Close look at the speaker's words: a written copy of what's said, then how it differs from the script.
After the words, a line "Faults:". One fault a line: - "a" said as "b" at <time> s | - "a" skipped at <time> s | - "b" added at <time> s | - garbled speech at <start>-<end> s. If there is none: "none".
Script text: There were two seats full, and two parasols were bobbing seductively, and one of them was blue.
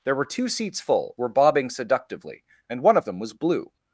There were two seats full, were bobbing seductively, and one of them was blue.
Faults:
- "and two parasols" skipped at 1.1 s